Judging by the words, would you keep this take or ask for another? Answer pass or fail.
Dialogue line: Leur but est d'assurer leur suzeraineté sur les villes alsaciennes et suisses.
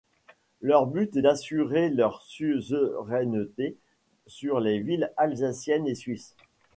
pass